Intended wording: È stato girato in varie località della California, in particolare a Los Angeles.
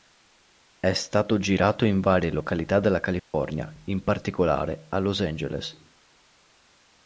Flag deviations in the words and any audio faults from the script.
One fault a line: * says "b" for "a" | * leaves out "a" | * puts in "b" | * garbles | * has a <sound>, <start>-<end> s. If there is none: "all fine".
* has a dropout, 3.2-3.3 s